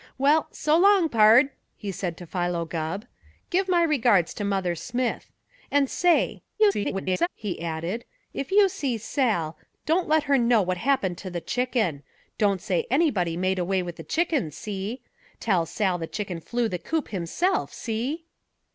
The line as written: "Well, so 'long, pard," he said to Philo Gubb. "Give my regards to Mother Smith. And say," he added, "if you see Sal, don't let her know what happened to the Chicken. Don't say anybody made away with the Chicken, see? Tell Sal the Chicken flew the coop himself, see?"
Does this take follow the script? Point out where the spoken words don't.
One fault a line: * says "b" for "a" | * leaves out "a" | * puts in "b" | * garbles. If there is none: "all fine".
* garbles